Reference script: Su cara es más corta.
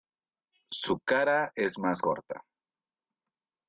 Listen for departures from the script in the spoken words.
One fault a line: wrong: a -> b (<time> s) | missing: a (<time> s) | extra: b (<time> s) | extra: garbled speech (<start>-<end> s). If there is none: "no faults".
no faults